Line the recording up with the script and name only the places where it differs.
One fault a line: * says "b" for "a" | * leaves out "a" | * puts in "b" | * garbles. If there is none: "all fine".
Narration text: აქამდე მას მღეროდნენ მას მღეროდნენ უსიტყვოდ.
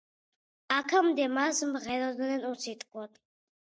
* leaves out "მას მღეროდნენ"